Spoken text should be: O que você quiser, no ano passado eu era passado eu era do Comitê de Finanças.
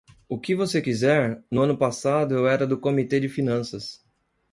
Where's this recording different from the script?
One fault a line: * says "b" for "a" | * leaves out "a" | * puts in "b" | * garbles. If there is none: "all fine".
* leaves out "passado eu era"